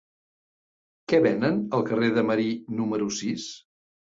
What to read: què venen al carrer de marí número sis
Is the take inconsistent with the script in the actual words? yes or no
no